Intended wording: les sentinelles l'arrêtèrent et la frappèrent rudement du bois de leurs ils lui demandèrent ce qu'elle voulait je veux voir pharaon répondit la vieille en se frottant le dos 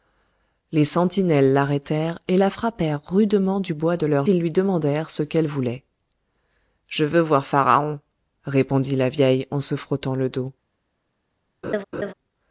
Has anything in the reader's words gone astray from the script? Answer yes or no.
no